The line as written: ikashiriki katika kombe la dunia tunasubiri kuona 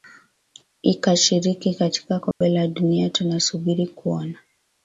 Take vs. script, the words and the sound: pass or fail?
fail